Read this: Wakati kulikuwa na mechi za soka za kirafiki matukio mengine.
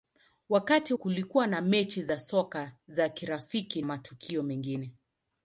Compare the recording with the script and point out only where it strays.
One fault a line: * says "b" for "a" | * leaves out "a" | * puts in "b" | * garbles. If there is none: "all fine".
all fine